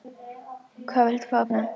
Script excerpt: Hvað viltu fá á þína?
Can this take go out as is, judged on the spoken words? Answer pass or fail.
pass